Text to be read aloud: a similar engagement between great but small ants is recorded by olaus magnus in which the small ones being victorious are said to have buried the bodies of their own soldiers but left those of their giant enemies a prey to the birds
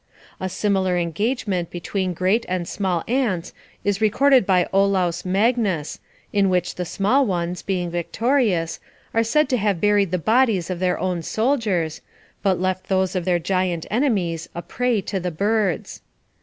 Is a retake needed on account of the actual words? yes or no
yes